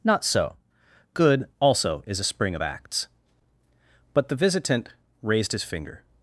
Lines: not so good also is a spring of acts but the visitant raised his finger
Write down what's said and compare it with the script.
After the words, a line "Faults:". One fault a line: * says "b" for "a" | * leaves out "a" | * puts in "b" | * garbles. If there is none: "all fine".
not so good also is a spring of acts but the visitant raised his finger
Faults:
all fine